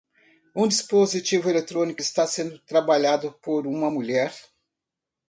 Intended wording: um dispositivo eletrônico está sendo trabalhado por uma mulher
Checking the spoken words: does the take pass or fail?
pass